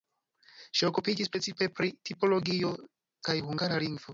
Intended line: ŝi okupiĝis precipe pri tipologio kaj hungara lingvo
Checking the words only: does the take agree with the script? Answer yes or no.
yes